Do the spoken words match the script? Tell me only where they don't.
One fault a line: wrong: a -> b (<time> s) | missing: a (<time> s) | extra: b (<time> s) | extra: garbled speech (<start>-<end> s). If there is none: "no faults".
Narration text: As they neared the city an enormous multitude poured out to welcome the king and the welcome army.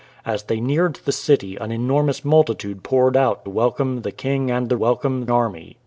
no faults